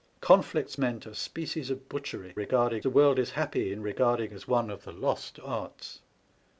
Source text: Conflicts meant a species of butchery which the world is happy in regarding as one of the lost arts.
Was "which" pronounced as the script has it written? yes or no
no